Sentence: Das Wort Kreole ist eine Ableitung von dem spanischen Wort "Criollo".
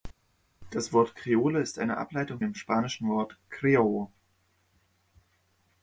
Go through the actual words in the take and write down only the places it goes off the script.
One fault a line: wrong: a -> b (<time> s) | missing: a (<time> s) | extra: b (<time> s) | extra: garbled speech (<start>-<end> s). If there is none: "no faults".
missing: von (2.4 s)